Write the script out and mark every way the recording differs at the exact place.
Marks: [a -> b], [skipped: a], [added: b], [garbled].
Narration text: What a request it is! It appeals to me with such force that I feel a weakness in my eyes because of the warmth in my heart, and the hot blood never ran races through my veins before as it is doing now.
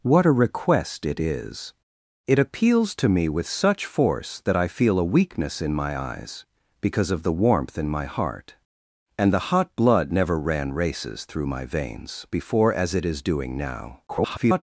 What a request it is! It appeals to me with such force that I feel a weakness in my eyes because of the warmth in my heart, and the hot blood never ran races through my veins before as it is doing now. [garbled]